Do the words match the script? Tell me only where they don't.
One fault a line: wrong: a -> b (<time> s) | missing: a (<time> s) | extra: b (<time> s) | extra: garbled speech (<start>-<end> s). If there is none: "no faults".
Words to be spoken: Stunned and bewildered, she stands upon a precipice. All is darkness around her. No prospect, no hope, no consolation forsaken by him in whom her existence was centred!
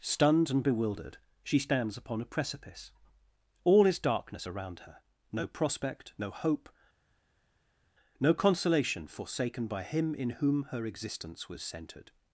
no faults